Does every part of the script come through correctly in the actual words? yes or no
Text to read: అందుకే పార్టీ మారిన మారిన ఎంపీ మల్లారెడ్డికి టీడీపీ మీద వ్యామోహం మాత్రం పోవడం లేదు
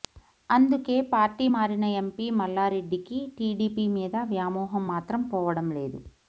no